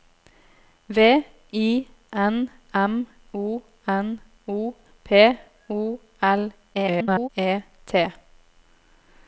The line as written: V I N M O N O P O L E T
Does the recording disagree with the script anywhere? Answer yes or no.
yes